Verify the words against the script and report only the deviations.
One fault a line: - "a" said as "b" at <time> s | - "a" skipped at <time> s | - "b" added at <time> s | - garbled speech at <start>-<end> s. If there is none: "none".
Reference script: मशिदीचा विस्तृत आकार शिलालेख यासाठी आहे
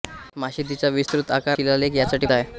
none